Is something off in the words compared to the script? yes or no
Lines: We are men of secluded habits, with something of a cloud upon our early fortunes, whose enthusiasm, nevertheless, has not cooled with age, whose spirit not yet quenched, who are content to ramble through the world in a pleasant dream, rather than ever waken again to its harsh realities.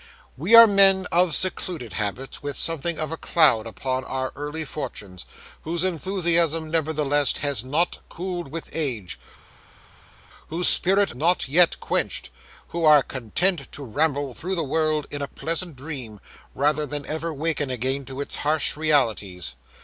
no